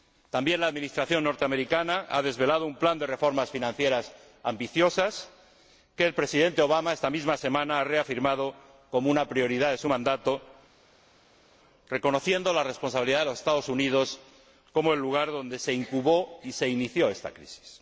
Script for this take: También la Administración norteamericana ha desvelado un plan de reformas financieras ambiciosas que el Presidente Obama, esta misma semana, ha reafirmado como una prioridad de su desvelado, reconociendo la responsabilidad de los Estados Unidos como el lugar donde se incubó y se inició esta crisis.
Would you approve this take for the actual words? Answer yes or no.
no